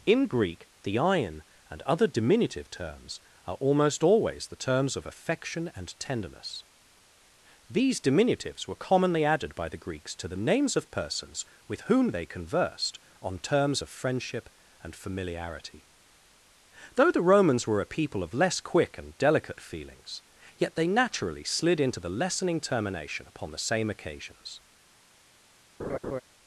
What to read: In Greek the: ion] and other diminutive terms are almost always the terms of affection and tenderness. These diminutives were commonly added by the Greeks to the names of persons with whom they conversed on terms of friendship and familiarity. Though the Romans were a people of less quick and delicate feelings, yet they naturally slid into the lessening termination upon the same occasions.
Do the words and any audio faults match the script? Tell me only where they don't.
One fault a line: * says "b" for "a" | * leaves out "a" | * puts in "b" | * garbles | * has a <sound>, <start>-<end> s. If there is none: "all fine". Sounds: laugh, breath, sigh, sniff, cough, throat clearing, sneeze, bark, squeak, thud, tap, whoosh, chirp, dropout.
* has a laugh, 25.8-26.2 s